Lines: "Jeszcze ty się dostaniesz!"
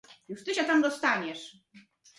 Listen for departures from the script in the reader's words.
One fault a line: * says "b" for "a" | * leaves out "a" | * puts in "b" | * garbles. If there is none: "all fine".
* says "Już" for "Jeszcze"
* puts in "tam"